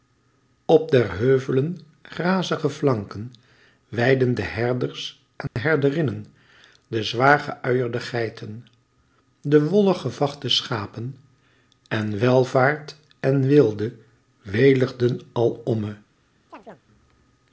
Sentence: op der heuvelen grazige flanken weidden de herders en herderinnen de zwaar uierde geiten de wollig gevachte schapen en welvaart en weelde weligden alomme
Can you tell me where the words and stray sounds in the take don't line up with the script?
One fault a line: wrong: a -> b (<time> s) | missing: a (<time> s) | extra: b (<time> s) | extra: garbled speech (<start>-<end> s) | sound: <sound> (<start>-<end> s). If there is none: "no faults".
sound: dropout (5.5-5.6 s)
extra: ge (7.4 s)
sound: chirp (16.5-16.8 s)